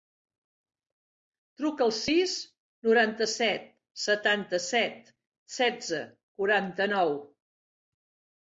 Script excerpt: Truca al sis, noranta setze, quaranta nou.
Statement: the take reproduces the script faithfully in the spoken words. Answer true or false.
false